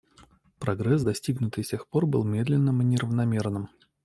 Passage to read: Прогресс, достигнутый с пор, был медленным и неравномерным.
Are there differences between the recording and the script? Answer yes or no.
yes